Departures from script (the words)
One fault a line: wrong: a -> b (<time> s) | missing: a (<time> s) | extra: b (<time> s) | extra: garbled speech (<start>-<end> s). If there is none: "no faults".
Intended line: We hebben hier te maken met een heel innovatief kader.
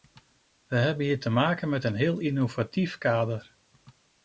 no faults